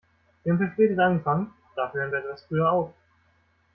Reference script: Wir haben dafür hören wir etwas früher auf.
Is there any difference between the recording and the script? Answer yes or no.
yes